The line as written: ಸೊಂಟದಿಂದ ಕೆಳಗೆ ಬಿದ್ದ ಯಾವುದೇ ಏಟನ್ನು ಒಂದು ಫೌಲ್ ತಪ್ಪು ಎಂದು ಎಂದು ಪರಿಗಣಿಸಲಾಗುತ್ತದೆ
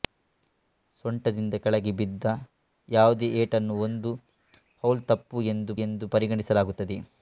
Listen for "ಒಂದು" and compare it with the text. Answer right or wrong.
right